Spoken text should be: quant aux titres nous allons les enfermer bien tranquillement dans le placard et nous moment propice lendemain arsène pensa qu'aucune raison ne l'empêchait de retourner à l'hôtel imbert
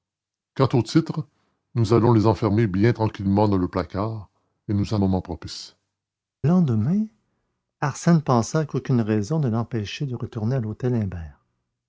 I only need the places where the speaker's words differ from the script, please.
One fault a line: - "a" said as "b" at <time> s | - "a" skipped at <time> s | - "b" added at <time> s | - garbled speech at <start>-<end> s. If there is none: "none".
none